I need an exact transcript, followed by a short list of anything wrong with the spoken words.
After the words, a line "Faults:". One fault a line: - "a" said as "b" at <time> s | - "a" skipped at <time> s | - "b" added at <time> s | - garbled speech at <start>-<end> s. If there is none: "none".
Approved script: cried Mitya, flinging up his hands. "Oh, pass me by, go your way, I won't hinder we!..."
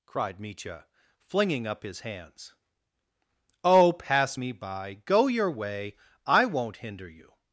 cried Mitya, flinging up his hands. "Oh, pass me by, go your way, I won't hinder you!..."
Faults:
- "we" said as "you" at 7.1 s